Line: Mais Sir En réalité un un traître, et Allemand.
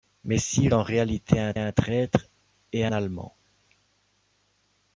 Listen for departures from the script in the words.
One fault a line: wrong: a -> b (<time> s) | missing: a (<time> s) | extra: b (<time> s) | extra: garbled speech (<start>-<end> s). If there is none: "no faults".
no faults